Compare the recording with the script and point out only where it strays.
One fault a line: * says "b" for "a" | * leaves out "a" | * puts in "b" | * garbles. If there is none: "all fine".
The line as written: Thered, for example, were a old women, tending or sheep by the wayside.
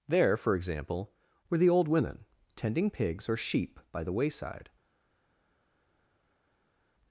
* says "There" for "Thered"
* says "the" for "a"
* puts in "pigs"